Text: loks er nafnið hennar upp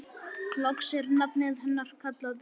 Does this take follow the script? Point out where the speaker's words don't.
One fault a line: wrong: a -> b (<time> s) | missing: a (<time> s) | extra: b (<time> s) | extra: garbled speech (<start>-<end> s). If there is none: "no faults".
extra: kallað (2.0 s)